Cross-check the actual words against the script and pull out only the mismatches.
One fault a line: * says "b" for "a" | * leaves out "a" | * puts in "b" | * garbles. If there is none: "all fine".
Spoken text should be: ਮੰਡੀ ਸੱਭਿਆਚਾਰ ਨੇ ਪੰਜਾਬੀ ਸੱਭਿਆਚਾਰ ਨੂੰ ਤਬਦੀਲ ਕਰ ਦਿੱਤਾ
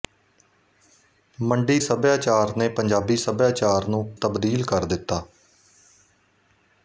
all fine